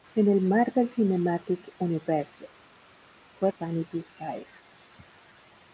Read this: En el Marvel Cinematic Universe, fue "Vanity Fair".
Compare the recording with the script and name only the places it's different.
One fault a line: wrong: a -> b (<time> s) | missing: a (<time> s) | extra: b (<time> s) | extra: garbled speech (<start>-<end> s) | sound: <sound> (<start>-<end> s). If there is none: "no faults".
no faults